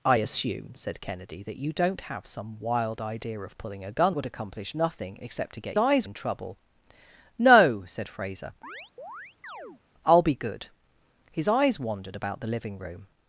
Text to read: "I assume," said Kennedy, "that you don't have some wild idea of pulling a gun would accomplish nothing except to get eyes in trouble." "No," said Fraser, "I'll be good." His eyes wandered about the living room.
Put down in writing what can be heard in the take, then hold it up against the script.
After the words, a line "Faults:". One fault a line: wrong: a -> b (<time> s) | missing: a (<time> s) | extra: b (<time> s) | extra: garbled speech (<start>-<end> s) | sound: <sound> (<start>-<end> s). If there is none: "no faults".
"I assume," said Kennedy, "that you don't have some wild idea of pulling a gun would accomplish nothing except to get eyes in trouble." "No," said Fraser, "I'll be good." His eyes wandered about the living room.
Faults:
sound: chirp (8.6-9.8 s)